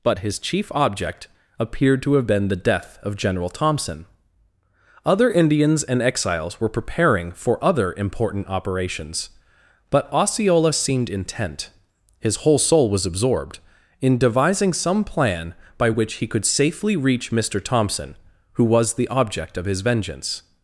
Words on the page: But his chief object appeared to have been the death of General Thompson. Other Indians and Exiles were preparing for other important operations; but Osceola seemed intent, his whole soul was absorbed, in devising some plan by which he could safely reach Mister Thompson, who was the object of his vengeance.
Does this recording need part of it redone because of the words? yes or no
no